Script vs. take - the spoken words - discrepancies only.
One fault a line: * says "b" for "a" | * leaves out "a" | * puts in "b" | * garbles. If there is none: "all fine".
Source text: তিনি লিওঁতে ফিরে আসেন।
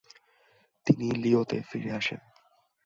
all fine